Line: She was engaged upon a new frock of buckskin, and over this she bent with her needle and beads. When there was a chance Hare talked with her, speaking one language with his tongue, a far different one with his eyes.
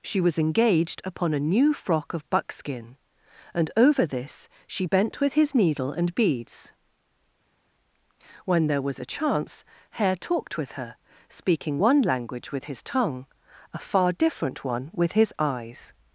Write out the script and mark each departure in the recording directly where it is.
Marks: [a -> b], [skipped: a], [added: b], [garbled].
She was engaged upon a new frock of buckskin, and over this she bent with [her -> his] needle and beads. When there was a chance Hare talked with her, speaking one language with his tongue, a far different one with his eyes.